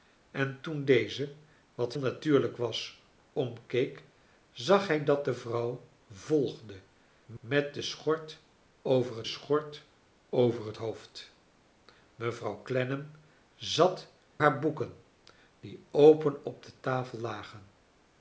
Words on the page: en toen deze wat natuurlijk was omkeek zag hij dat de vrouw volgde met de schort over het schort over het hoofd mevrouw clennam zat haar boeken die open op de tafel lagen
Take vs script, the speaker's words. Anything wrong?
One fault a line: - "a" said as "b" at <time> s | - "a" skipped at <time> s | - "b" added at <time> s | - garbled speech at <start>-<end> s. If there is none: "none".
none